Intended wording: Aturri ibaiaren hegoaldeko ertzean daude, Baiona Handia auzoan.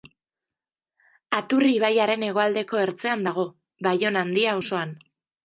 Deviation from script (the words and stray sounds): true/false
true